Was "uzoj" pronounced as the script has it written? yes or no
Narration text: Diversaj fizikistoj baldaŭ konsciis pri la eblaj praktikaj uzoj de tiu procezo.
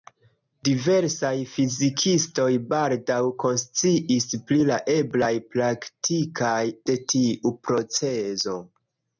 no